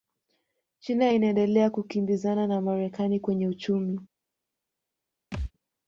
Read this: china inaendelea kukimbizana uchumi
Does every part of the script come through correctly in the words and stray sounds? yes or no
no